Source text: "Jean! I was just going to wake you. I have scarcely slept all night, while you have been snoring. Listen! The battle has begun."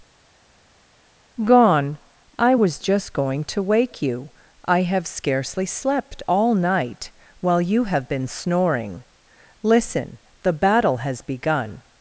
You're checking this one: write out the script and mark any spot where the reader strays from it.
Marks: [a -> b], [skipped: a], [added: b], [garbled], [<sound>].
["Jean! -> Gone] I was just going to wake you. I have scarcely slept all night, while you have been snoring. Listen! The battle has begun."